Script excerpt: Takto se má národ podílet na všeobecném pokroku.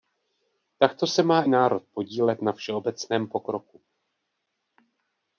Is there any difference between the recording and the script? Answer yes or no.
no